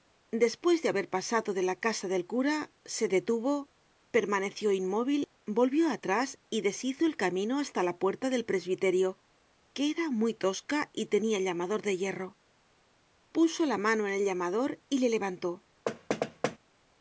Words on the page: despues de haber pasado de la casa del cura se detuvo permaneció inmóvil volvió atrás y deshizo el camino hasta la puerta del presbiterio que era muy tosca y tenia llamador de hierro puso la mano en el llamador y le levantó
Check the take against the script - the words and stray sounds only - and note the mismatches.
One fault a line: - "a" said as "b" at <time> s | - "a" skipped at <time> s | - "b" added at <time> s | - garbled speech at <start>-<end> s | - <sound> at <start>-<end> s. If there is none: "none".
- thud at 15.9-16.6 s